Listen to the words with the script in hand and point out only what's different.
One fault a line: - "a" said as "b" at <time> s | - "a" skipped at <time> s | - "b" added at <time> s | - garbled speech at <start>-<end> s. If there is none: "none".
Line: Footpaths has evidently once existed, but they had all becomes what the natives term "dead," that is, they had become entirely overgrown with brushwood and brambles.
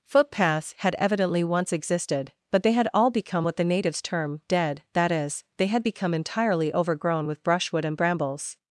- "has" said as "had" at 0.8 s
- "becomes" said as "become" at 3.1 s